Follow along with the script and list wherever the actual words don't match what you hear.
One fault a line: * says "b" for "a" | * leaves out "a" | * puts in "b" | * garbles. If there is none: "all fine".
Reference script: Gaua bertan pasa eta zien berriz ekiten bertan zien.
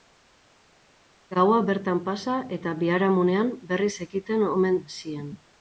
* says "biharamunean" for "zien"
* says "omen" for "bertan"